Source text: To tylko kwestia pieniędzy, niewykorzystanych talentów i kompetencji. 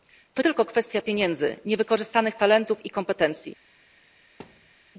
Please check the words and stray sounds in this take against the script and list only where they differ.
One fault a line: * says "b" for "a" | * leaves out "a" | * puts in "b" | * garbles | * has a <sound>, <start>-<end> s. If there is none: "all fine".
* has a thud, 4.4-4.7 s